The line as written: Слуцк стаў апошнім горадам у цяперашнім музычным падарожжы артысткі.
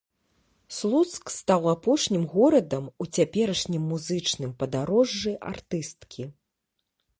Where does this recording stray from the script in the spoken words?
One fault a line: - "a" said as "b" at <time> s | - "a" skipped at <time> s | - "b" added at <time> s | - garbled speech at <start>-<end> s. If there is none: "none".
none